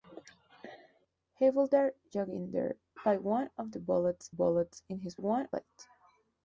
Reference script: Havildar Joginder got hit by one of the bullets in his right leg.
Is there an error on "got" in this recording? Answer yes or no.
yes